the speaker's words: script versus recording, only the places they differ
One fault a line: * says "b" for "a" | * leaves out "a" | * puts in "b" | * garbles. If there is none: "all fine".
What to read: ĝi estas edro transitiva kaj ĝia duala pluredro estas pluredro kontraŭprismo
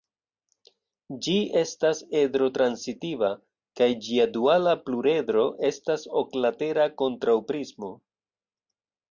* says "oklatera" for "pluredro"